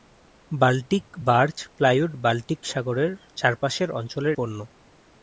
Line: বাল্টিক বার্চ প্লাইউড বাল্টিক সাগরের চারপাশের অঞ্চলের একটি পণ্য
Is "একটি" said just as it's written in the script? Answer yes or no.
no